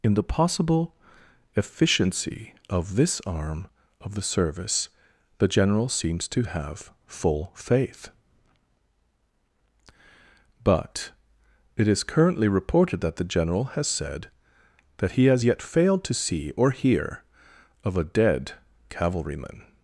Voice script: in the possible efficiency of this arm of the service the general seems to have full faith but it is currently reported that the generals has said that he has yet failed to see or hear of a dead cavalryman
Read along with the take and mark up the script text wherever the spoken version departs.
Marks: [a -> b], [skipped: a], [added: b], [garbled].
in the possible efficiency of this arm of the service the general seems to have full faith but it is currently reported that the [generals -> general] has said that he has yet failed to see or hear of a dead cavalryman